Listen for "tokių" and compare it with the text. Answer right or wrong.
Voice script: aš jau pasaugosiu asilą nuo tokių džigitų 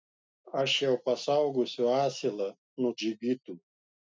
wrong